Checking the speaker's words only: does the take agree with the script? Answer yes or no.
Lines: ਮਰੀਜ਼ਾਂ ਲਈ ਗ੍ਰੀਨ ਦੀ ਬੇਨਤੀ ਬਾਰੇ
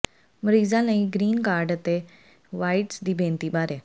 no